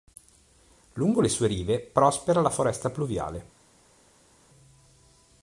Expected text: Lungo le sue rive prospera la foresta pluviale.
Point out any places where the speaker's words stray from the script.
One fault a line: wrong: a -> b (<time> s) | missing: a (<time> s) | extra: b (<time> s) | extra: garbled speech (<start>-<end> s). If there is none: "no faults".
no faults